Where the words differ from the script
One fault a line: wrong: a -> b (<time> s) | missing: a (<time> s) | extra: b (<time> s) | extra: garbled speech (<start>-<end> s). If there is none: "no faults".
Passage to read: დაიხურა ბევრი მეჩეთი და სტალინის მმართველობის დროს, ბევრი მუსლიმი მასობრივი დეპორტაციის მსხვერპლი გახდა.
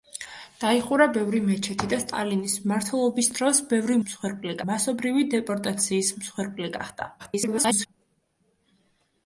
wrong: მუსლიმი -> მსხვერპლი (4.1 s)
extra: garbled speech (7.2-7.9 s)